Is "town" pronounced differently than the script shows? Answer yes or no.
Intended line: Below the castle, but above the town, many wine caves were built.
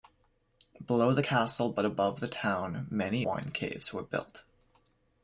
no